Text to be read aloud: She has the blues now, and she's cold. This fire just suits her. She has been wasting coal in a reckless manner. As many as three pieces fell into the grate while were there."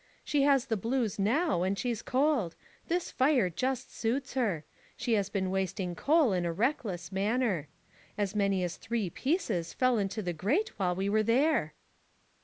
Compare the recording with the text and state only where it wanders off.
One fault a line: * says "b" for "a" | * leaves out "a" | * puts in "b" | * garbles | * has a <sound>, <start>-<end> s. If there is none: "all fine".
* puts in "we"